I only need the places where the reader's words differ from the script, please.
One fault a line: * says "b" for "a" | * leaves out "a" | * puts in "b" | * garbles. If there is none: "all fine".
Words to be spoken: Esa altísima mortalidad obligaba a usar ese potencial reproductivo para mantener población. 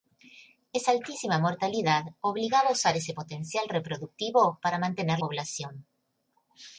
all fine